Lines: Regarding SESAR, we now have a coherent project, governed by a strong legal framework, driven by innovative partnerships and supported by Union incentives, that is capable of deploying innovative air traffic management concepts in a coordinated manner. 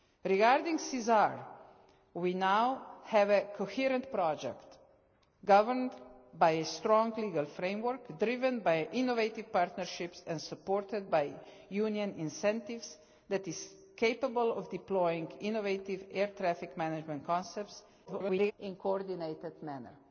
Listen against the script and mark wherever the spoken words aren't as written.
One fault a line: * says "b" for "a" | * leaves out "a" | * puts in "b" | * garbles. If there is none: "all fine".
* garbles